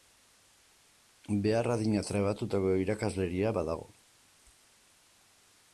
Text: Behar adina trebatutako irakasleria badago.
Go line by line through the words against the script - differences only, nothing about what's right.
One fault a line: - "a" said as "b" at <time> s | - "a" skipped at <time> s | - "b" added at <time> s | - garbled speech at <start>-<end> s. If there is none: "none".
none